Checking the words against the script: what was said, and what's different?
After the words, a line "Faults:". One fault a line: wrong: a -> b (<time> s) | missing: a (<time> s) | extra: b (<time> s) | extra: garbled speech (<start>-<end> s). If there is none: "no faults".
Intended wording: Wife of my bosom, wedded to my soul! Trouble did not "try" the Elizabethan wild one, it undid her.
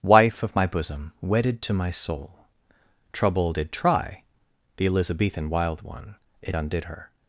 Wife of my bosom, wedded to my soul! Trouble did "try" the Elizabethan wild one, it undid her.
Faults:
missing: not (3.7 s)